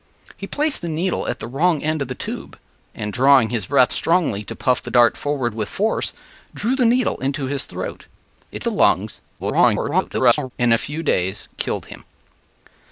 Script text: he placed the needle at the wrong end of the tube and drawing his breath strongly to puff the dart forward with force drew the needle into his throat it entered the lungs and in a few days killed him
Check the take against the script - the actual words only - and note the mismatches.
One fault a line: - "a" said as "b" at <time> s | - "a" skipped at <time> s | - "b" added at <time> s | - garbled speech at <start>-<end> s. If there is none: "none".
- "entered" skipped at 8.7 s
- garbled speech at 9.4-10.5 s